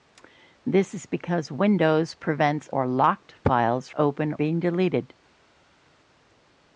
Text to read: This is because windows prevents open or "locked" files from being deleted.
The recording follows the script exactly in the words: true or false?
false